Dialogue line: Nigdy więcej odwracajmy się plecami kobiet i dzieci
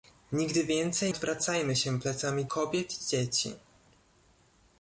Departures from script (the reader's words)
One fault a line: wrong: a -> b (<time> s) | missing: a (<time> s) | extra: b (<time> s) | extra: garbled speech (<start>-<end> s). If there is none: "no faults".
no faults